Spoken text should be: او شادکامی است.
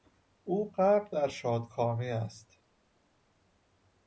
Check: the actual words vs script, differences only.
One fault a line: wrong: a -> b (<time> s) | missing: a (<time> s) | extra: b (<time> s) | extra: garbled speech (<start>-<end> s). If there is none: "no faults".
extra: غرق در (0.7 s)